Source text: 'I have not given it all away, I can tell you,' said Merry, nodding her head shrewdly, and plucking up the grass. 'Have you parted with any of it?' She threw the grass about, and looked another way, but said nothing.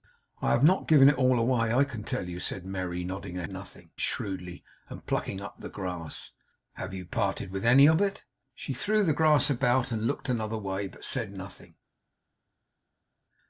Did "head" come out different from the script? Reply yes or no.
yes